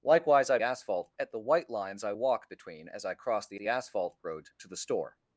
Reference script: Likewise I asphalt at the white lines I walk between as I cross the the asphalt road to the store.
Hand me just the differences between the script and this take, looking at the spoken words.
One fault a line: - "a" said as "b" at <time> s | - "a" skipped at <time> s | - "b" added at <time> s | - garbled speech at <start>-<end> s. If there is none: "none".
none